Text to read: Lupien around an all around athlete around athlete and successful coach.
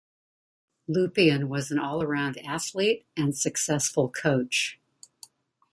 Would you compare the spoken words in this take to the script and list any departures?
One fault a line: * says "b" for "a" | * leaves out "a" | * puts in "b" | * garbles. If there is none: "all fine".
* says "was" for "around"
* leaves out "around athlete"